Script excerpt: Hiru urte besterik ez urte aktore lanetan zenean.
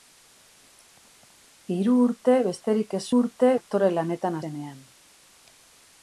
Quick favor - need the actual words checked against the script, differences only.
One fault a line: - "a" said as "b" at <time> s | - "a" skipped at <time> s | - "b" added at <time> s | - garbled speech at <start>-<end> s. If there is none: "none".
none